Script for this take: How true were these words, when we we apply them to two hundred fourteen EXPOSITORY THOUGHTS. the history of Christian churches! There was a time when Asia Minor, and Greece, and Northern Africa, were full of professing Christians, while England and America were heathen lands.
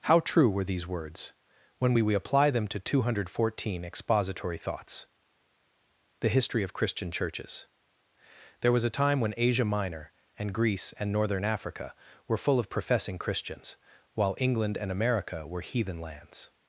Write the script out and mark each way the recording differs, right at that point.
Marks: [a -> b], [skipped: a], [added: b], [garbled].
How true were these words, when we we apply them to two hundred fourteen EXPOSITORY THOUGHTS. the history of Christian churches! There was a time when Asia Minor, and Greece, and Northern Africa, were full of professing Christians, while England and America were heathen lands.